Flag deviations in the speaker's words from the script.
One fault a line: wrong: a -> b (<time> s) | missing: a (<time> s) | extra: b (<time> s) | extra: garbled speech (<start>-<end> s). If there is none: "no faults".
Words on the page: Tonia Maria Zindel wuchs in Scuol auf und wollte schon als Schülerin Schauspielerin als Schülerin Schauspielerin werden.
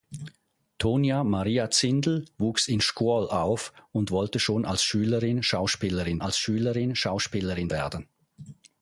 no faults